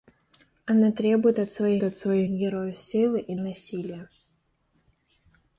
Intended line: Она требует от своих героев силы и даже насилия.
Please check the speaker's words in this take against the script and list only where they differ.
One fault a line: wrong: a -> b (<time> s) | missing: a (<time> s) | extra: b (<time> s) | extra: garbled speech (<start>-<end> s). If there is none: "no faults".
extra: от своих (1.8 s)
missing: даже (3.3 s)